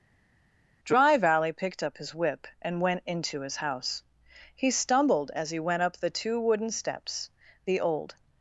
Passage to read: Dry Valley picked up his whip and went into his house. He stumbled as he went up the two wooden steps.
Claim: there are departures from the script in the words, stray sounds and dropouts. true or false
true